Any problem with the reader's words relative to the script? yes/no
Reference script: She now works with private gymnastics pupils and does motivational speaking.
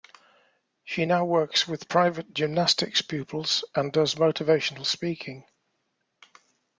no